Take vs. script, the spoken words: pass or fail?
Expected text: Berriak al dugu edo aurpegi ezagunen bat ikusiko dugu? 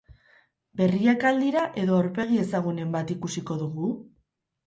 fail